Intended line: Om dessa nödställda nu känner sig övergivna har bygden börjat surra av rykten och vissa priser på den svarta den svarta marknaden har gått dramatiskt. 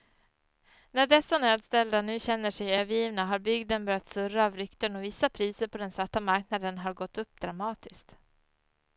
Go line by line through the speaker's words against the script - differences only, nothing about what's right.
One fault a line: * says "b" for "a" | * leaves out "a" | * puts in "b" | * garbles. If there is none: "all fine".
* says "När" for "Om"
* leaves out "den svarta"
* puts in "upp"